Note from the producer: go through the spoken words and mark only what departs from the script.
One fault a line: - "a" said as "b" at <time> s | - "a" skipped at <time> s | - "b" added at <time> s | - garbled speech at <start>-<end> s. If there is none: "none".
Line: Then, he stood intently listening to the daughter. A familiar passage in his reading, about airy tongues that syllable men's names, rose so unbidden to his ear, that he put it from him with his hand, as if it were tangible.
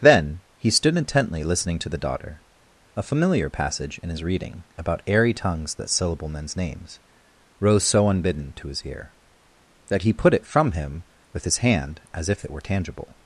none